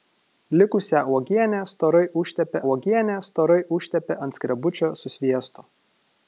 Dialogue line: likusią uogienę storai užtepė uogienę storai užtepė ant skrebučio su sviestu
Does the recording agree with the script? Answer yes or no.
yes